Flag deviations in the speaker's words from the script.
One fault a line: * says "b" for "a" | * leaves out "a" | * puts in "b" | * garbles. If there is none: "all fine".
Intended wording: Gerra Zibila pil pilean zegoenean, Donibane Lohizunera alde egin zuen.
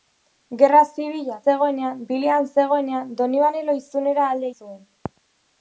* says "zegoenean" for "pil"
* leaves out "egin"